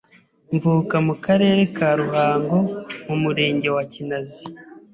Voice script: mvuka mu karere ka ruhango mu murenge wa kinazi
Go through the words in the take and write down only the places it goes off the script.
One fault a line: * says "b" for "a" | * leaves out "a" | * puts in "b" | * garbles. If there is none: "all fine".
all fine